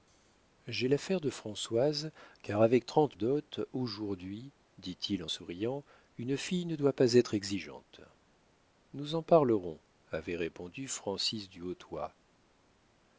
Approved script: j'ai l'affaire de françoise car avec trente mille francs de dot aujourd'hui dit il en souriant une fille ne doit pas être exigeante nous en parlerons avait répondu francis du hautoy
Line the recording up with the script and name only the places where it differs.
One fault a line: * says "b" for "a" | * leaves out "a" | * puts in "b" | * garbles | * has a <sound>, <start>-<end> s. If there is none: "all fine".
* leaves out "mille francs de"